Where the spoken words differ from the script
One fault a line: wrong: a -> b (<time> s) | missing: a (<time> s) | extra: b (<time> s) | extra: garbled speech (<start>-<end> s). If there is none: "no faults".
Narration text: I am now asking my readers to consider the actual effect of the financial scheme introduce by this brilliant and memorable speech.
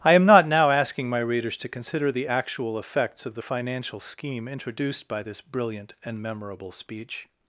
extra: not (0.2 s)
wrong: effect -> effects (2.8 s)
wrong: introduce -> introduced (4.5 s)